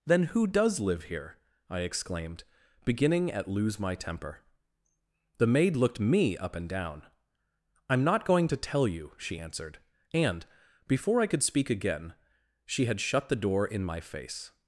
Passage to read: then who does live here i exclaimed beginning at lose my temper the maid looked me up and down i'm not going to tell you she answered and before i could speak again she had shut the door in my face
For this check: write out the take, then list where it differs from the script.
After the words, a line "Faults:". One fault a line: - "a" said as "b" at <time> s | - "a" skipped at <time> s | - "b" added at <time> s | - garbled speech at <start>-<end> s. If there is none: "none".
then who does live here i exclaimed beginning at lose my temper the maid looked me up and down i'm not going to tell you she answered and before i could speak again she had shut the door in my face
Faults:
none